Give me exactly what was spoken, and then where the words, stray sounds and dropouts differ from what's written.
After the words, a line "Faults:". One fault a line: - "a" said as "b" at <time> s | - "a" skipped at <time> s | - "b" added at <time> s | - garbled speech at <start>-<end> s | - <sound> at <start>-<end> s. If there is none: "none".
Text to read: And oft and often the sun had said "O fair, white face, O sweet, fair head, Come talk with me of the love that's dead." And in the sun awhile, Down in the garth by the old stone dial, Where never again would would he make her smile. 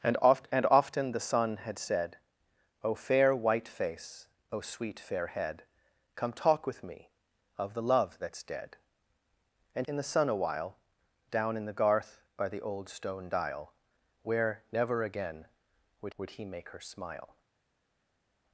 And oft and often the sun had said "O fair, white face, O sweet, fair head, Come talk with me of the love that's dead." And in the sun awhile, Down in the garth by the old stone dial, Where never again would would he make her smile.
Faults:
none